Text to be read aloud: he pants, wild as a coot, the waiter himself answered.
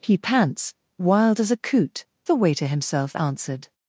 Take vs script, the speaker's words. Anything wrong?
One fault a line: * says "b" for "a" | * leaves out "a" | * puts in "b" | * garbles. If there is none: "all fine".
all fine